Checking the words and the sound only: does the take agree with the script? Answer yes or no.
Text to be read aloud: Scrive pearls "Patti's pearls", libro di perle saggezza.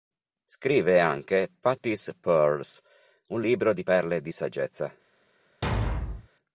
no